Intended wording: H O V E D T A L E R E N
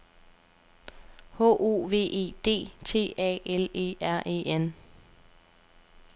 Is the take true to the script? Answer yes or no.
yes